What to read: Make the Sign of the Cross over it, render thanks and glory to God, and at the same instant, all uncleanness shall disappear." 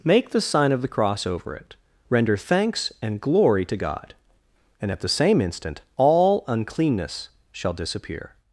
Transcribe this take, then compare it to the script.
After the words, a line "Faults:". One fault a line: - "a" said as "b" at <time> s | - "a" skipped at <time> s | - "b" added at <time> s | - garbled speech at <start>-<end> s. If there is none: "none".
Make the Sign of the Cross over it, render thanks and glory to God, and at the same instant, all uncleanness shall disappear."
Faults:
none